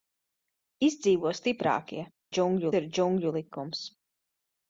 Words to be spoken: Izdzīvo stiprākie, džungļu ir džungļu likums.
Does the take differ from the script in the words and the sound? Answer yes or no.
no